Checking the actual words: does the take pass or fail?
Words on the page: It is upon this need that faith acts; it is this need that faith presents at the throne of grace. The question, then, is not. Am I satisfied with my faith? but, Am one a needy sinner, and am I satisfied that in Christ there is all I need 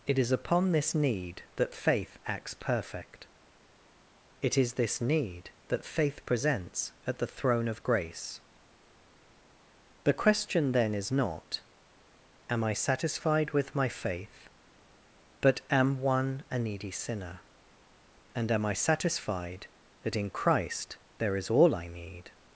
fail